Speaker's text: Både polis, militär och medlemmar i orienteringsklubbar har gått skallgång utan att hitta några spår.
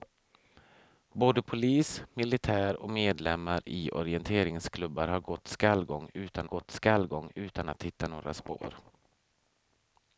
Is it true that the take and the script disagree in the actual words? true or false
true